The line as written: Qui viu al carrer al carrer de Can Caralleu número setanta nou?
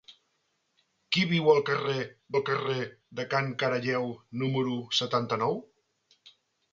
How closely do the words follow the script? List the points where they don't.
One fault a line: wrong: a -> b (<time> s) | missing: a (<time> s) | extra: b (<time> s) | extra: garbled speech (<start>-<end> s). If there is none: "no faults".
no faults